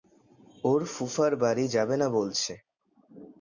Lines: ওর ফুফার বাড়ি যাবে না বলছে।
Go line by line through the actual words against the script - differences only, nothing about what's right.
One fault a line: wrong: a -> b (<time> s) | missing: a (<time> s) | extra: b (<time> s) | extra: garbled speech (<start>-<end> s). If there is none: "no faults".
no faults